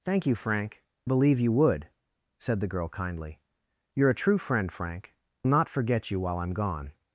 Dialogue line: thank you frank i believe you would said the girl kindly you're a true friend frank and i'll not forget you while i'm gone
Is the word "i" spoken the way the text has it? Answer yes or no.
no